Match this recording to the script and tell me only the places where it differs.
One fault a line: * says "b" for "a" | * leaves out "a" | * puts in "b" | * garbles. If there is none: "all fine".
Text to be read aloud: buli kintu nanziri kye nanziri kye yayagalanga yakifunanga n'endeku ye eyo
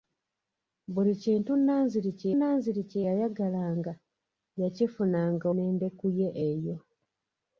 all fine